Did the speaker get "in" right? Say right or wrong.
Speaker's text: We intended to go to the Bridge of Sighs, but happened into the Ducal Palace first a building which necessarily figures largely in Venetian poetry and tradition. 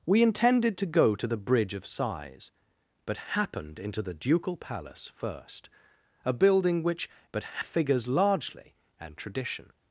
wrong